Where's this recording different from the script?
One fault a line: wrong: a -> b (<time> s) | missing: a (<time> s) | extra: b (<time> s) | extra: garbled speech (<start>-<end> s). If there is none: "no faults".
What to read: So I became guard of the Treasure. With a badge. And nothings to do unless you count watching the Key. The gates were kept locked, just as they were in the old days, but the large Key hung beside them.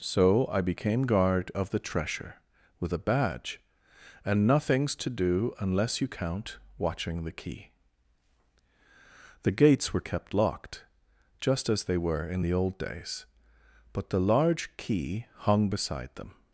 no faults